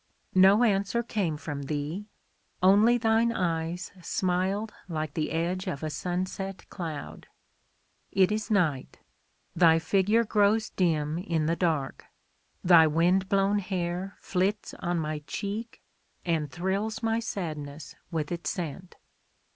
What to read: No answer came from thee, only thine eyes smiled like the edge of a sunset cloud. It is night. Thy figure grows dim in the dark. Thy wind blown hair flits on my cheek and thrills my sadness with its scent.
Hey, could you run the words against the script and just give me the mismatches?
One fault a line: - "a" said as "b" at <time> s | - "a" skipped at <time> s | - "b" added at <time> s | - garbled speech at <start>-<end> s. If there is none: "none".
none